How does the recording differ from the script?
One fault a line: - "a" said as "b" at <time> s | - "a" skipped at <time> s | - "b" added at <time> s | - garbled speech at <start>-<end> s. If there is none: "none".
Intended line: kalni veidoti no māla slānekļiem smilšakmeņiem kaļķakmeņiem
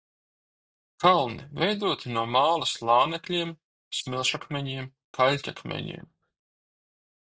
none